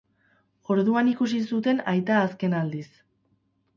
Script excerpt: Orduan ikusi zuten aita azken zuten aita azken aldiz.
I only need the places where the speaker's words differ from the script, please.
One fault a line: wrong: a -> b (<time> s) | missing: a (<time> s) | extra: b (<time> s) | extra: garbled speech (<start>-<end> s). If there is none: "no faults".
missing: zuten aita azken (2.6 s)